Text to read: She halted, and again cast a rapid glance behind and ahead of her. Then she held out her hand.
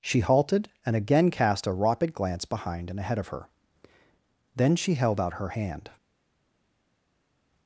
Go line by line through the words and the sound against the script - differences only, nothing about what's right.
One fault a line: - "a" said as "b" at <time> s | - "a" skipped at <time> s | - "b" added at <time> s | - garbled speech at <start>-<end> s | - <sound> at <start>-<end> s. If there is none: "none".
none